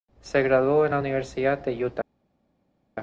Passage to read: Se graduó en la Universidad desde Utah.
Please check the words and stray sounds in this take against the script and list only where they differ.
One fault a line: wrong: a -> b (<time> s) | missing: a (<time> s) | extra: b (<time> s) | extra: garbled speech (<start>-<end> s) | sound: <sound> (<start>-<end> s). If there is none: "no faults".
wrong: desde -> de (1.6 s)